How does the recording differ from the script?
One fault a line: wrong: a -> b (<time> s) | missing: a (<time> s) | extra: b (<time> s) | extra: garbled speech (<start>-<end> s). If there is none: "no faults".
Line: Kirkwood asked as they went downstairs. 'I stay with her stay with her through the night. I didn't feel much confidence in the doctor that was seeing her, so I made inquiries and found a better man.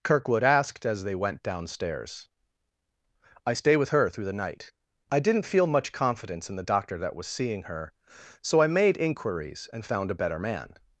missing: stay with her (4.1 s)